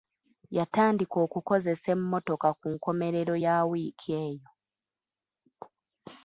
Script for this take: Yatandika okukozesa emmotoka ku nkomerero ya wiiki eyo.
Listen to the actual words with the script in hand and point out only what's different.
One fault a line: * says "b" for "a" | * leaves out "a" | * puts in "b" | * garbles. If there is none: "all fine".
all fine